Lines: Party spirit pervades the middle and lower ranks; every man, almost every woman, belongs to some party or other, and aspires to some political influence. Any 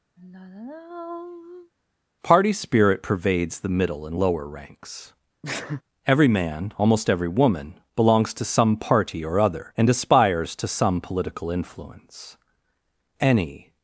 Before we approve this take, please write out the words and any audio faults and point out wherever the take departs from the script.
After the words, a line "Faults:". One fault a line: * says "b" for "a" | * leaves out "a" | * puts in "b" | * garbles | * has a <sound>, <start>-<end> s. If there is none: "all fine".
Party spirit pervades the middle and lower ranks; every man, almost every woman, belongs to some party or other, and aspires to some political influence. Any
Faults:
* has a sigh, 0.2-1.7 s
* has a sneeze, 5.4-5.8 s